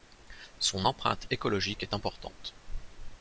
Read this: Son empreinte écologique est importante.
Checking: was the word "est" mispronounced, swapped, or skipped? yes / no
no